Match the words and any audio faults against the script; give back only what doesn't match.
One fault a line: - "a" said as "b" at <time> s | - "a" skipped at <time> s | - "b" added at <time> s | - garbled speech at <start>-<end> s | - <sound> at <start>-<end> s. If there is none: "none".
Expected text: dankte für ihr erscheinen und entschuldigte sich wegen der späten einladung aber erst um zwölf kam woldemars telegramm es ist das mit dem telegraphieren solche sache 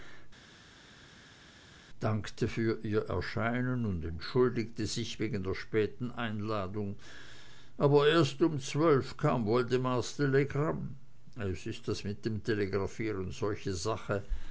none